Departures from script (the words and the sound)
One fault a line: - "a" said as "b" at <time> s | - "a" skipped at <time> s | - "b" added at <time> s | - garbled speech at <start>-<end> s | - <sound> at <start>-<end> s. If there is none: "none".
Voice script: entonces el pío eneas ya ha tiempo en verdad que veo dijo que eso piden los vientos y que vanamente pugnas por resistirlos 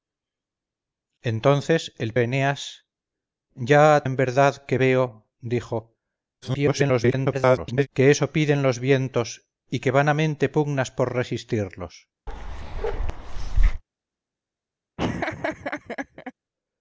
- "pío" skipped at 2.1 s
- "tiempo" skipped at 4.0 s
- garbled speech at 6.4-7.9 s
- bark at 12.3-13.8 s
- laugh at 15.0-16.3 s